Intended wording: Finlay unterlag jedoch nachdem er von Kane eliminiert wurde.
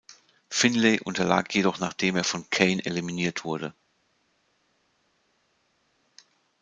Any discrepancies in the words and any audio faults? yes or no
no